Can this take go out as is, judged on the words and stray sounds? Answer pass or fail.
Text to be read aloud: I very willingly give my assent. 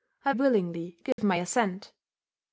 fail